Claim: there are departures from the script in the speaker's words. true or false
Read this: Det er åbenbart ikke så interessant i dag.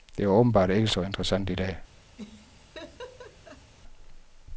false